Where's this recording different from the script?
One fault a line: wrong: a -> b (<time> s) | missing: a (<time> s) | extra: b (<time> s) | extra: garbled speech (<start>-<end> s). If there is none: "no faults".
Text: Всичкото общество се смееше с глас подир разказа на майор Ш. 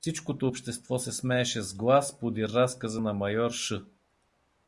no faults